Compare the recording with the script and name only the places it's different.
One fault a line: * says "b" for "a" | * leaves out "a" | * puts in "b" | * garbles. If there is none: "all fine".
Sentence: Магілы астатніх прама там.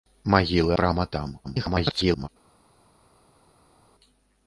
* leaves out "астатніх"
* garbles